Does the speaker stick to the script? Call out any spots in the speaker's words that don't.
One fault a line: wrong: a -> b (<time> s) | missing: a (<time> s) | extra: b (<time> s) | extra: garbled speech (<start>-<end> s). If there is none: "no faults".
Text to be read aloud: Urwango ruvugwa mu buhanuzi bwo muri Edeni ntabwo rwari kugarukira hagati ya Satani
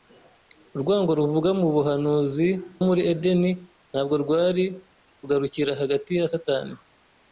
missing: bwo (2.5 s)